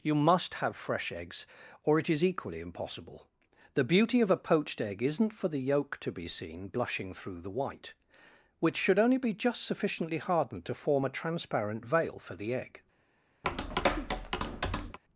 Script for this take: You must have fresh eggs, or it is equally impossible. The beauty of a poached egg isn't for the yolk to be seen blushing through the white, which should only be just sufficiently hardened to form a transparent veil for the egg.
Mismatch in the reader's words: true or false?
false